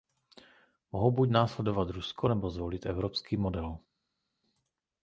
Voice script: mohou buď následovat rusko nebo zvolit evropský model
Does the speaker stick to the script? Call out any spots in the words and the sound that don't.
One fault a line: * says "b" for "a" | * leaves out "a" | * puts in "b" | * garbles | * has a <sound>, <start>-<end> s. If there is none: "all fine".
all fine